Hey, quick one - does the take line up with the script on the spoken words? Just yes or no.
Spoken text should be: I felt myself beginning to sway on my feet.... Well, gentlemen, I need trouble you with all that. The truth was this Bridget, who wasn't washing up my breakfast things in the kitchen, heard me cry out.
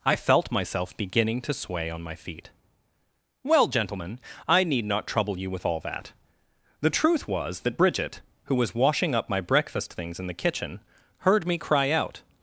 no